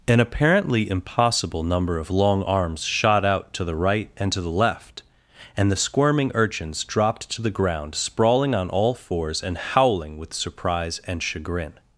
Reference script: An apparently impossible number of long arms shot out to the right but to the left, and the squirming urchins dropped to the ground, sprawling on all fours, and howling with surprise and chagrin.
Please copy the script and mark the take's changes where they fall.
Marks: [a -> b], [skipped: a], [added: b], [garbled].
An apparently impossible number of long arms shot out to the right [but -> and] to the left, and the squirming urchins dropped to the ground, sprawling on all fours, and howling with surprise and chagrin.